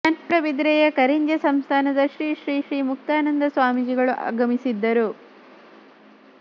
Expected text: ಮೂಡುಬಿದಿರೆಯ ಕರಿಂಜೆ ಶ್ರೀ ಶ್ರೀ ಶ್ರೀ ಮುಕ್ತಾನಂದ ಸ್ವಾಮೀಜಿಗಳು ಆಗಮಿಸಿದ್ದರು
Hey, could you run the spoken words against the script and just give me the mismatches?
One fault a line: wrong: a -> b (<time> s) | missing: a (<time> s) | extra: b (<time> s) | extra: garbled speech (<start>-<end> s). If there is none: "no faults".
extra: ಸಂಸ್ಥಾನದ (1.4 s)